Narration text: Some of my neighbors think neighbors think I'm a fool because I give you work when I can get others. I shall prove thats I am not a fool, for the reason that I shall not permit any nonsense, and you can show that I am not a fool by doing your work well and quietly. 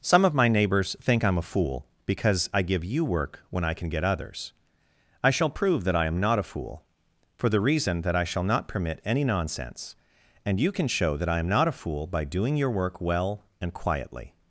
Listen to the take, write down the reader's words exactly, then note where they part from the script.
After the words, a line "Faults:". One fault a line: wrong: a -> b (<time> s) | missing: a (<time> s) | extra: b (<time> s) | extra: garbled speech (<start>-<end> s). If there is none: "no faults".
Some of my neighbors think I'm a fool because I give you work when I can get others. I shall prove that I am not a fool, for the reason that I shall not permit any nonsense, and you can show that I am not a fool by doing your work well and quietly.
Faults:
missing: neighbors think (1.2 s)
wrong: thats -> that (5.8 s)